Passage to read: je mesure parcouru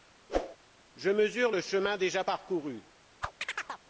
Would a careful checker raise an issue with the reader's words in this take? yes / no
yes